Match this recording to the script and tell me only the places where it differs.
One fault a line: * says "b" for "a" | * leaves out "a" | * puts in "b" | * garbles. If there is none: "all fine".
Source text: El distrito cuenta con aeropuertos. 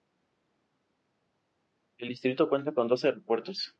* puts in "dos"